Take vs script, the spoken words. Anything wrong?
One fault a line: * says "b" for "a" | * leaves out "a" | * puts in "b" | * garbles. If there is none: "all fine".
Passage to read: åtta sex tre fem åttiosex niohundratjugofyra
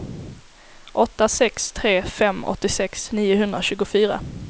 all fine